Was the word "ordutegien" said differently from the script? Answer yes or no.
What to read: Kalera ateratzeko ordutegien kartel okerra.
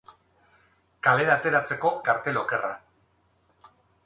yes